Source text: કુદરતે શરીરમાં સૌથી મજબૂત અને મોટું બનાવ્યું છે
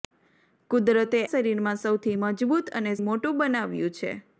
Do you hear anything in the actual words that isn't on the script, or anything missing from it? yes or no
no